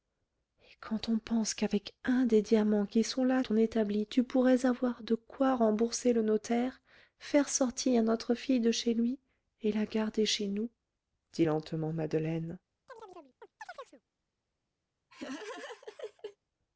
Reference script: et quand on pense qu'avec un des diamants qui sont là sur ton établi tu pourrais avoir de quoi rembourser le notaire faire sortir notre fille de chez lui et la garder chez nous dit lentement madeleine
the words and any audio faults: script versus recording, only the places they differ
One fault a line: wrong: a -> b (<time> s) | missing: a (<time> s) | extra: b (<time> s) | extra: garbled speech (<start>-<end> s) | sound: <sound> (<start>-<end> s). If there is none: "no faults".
missing: sur (3.4 s)
sound: chirp (12.9-14.0 s)
sound: laugh (15.1-16.4 s)